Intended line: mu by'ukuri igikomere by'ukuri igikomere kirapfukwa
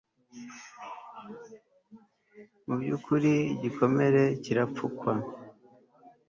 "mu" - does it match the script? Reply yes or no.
yes